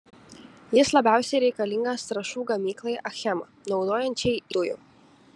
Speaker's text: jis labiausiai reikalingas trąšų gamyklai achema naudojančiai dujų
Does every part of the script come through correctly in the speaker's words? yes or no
yes